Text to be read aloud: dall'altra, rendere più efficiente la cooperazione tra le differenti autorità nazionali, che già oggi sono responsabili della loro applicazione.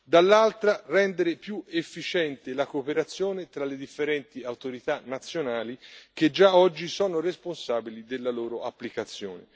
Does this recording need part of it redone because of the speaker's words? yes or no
no